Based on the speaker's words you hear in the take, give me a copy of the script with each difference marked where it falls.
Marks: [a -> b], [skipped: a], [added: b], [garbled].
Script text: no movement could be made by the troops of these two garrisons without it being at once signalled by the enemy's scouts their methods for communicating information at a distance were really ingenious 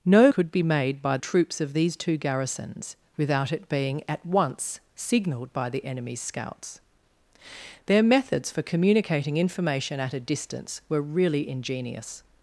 no [skipped: movement] could be made by [skipped: the] troops of these two garrisons without it being at once signalled by the enemy's scouts their methods for communicating information at a distance were really ingenious